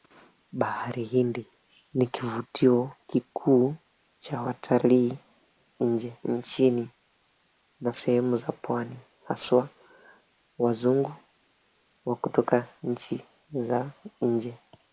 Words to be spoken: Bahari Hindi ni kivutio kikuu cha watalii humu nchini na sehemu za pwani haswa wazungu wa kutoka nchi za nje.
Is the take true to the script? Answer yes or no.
no